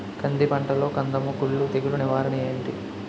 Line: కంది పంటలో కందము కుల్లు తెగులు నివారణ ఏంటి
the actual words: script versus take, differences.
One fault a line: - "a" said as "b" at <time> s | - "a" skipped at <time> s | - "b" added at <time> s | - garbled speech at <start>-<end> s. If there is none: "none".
none